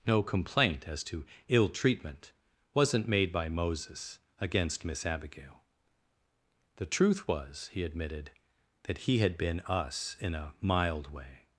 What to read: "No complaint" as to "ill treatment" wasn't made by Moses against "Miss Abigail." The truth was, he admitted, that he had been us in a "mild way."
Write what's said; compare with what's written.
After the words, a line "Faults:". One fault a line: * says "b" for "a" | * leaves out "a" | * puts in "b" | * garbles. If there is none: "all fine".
"No complaint" as to "ill treatment" wasn't made by Moses against "Miss Abigail." The truth was, he admitted, that he had been us in a "mild way."
Faults:
all fine